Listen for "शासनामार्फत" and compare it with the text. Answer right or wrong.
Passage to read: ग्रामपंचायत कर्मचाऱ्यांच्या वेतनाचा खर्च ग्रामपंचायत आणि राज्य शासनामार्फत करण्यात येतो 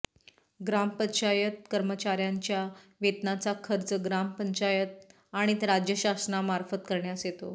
right